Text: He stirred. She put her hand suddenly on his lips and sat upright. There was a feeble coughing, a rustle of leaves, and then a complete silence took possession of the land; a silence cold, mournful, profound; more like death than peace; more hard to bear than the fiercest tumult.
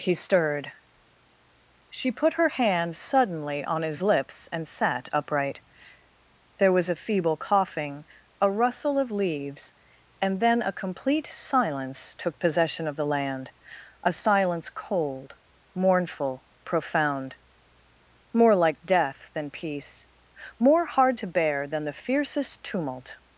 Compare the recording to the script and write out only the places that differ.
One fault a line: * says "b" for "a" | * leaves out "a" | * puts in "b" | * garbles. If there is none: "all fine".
all fine